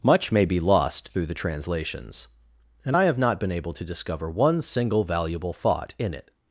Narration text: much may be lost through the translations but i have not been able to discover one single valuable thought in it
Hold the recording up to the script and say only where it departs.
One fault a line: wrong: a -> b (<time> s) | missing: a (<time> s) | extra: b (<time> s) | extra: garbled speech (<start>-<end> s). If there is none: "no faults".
wrong: but -> and (2.8 s)